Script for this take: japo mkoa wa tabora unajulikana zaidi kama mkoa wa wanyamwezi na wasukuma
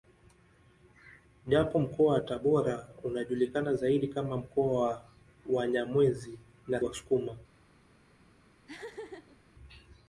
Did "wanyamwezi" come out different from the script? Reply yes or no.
no